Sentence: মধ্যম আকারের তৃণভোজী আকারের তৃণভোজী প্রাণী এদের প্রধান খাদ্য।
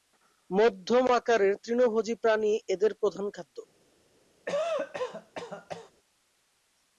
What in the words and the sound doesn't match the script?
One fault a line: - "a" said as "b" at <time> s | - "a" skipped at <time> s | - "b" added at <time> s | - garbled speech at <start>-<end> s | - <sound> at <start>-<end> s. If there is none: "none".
- "আকারের তৃণভোজী" skipped at 2.1 s
- cough at 4.5-5.9 s